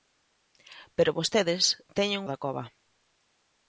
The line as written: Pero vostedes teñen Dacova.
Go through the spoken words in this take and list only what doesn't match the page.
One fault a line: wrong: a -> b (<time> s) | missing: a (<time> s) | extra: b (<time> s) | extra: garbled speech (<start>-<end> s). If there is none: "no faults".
no faults